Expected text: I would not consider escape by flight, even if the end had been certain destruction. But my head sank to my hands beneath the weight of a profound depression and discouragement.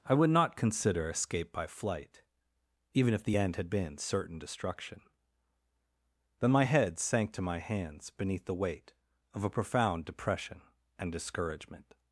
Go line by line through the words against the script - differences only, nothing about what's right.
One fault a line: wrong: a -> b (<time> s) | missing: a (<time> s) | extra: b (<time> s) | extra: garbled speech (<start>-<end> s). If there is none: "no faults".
wrong: But -> Then (6.4 s)